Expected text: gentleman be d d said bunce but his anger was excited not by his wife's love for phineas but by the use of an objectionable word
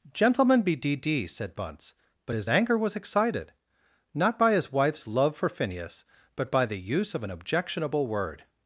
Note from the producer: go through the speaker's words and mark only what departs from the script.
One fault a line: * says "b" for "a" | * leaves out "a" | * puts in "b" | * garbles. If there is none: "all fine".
all fine